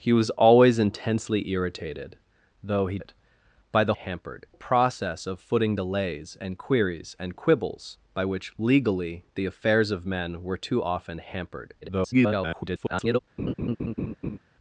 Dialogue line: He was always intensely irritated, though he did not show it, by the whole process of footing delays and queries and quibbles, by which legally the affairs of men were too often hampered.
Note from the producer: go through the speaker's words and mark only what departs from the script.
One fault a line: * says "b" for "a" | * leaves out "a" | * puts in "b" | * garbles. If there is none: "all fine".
* leaves out "did not show"
* says "hampered" for "whole"
* garbles